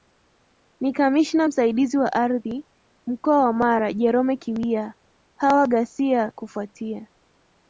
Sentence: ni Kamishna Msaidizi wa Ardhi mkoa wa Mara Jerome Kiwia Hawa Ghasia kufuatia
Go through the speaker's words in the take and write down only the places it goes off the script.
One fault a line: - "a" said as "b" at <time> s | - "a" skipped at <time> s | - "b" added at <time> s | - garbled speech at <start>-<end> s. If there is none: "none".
none